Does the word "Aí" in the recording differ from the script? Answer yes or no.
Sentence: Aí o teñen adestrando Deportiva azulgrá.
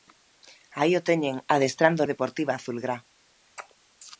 no